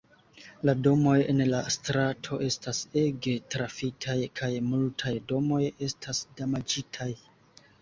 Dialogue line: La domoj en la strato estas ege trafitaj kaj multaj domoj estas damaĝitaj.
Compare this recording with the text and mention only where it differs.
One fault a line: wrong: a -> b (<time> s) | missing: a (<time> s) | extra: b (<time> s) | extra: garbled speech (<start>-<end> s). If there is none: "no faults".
no faults